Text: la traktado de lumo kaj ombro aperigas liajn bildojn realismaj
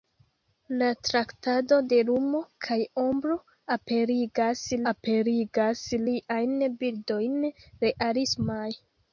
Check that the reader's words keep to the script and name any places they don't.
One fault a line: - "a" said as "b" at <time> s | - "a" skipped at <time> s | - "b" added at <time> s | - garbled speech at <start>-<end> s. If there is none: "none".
- "aperigas" added at 4.9 s